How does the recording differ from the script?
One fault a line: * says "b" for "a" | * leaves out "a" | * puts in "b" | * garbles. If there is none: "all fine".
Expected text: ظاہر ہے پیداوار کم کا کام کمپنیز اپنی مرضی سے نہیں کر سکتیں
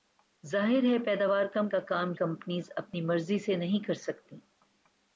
all fine